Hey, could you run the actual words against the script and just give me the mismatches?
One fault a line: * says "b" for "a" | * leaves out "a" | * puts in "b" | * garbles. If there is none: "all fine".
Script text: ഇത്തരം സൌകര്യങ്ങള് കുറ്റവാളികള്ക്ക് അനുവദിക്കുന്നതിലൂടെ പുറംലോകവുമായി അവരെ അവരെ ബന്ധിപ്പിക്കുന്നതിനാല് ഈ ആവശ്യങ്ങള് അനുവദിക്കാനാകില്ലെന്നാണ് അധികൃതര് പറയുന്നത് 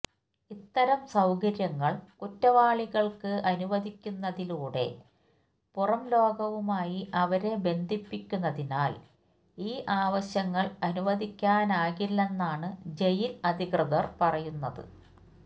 * leaves out "അവരെ"
* puts in "ജയില്"